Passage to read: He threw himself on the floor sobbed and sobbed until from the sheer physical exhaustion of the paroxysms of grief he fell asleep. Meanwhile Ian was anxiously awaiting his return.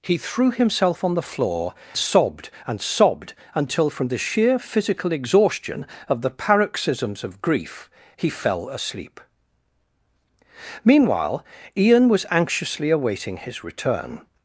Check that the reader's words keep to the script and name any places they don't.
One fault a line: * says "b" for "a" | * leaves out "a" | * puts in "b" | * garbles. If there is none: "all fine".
all fine